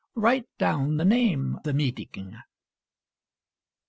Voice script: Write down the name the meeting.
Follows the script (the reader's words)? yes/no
yes